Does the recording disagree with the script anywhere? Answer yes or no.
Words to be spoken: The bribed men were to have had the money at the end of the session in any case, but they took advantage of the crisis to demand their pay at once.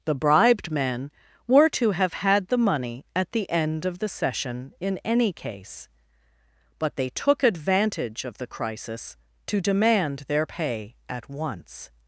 no